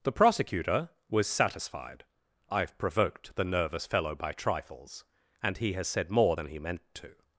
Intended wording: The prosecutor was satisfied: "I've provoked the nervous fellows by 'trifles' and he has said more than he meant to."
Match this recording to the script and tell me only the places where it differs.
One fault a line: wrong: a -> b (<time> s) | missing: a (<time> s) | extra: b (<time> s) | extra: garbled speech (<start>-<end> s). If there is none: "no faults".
wrong: fellows -> fellow (3.9 s)